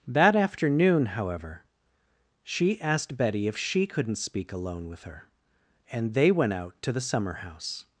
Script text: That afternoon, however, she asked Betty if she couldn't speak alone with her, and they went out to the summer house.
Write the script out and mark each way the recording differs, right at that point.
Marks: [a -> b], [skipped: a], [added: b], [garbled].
That afternoon, however, she asked Betty if she couldn't speak alone with her, and they went out to the summer house.